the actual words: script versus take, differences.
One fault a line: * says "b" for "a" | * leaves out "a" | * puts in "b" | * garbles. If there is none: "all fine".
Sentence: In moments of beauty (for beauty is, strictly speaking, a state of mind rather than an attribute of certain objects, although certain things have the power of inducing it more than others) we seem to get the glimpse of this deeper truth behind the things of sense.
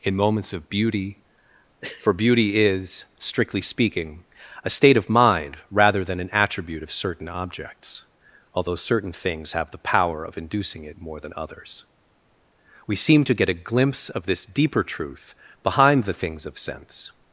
* says "a" for "the"